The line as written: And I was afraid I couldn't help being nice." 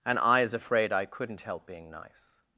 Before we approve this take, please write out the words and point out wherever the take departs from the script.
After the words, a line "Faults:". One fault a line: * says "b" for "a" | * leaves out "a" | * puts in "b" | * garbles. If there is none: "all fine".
And I is afraid I couldn't help being nice."
Faults:
* says "is" for "was"